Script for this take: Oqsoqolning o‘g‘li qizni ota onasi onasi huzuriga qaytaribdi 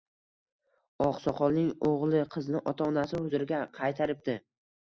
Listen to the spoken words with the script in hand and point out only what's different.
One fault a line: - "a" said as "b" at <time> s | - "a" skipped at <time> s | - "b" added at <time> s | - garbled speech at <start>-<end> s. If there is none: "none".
- "onasi" skipped at 3.2 s